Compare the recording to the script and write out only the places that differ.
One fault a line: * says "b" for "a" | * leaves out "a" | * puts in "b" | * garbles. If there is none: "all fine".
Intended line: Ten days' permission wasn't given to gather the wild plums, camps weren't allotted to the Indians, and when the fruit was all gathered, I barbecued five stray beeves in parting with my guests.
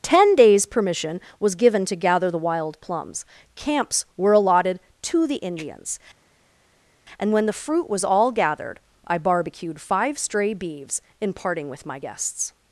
* says "was" for "wasn't"
* says "were" for "weren't"